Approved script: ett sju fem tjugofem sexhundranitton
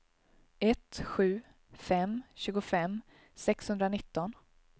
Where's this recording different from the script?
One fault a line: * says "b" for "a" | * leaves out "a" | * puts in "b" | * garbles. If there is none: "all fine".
all fine